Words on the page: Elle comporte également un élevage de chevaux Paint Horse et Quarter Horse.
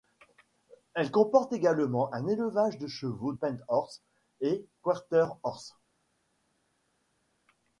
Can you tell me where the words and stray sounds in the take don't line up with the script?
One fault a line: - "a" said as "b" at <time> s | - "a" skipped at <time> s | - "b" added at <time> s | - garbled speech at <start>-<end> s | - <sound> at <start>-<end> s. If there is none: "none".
none